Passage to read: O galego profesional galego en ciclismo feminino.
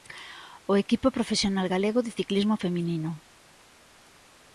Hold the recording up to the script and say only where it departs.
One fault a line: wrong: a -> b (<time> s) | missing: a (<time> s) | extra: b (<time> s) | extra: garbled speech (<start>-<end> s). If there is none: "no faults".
wrong: galego -> equipo (0.8 s)
wrong: en -> de (2.0 s)